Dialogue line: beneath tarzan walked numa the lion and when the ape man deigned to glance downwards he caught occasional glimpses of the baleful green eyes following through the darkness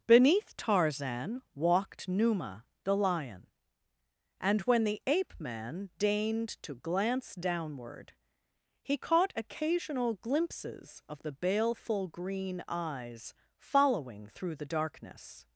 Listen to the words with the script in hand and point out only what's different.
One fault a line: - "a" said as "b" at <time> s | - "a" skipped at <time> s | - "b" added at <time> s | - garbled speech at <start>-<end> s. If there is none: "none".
- "downwards" said as "downward" at 7.3 s